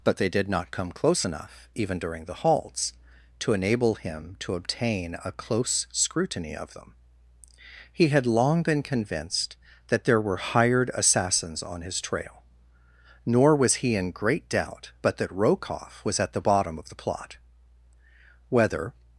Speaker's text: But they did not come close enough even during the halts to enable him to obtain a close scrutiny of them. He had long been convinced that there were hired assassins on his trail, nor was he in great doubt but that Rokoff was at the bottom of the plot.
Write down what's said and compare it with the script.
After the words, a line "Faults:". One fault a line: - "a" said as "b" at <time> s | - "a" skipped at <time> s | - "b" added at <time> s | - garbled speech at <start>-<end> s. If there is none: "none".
But they did not come close enough even during the halts to enable him to obtain a close scrutiny of them. He had long been convinced that there were hired assassins on his trail, nor was he in great doubt but that Rokoff was at the bottom of the plot. Whether
Faults:
- "Whether" added at 18.5 s